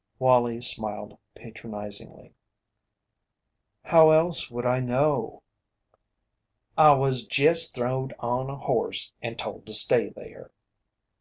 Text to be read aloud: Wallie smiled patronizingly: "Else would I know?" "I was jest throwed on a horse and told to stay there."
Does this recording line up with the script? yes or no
no